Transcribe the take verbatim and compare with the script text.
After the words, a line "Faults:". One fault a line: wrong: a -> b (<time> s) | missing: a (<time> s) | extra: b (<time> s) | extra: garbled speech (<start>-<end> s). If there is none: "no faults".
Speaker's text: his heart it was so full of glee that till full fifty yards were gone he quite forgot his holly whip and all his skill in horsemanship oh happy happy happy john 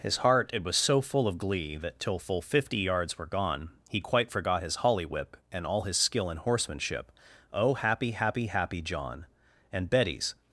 his heart it was so full of glee that till full fifty yards were gone he quite forgot his holly whip and all his skill in horsemanship oh happy happy happy john and betty's
Faults:
extra: and betty's (9.7 s)